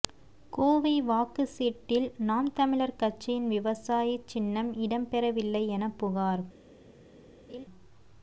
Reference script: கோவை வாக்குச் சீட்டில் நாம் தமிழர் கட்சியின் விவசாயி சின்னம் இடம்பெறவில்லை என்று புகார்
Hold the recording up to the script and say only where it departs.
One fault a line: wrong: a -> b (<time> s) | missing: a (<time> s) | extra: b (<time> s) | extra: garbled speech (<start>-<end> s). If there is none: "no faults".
wrong: என்று -> என (5.7 s)